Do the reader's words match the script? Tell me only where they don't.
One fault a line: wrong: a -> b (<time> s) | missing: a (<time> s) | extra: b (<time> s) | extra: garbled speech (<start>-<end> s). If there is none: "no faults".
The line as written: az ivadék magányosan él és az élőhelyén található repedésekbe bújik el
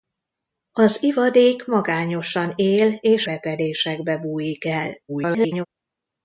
missing: az élőhelyén található (3.3 s)
extra: garbled speech (5.1-5.7 s)